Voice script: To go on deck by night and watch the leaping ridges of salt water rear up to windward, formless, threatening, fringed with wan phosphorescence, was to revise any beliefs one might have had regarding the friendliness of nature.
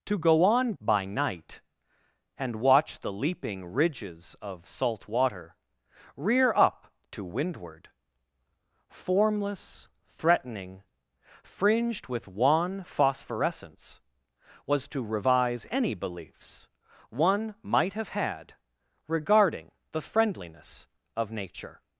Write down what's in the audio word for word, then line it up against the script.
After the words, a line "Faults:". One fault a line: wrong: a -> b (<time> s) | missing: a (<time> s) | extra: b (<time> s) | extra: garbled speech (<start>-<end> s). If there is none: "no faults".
To go on by night and watch the leaping ridges of salt water rear up to windward, formless, threatening, fringed with wan phosphorescence, was to revise any beliefs one might have had regarding the friendliness of nature.
Faults:
missing: deck (0.7 s)